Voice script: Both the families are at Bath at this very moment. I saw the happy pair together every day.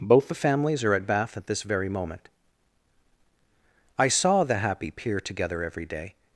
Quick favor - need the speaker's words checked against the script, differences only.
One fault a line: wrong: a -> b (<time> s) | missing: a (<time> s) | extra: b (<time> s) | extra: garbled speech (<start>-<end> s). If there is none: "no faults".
wrong: pair -> peer (4.9 s)